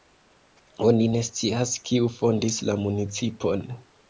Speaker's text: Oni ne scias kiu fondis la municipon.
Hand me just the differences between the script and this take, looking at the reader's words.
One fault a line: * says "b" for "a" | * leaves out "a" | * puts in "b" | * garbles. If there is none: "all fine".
all fine